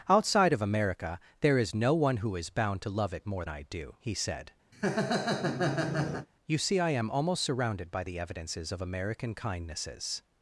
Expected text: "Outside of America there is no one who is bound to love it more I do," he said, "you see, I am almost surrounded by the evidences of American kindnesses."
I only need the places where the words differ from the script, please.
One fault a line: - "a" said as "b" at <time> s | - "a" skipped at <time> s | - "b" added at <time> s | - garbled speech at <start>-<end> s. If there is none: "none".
none